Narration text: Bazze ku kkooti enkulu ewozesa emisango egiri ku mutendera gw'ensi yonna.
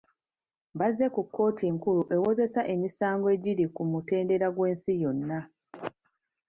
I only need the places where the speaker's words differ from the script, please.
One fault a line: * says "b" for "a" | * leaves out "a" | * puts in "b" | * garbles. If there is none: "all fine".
all fine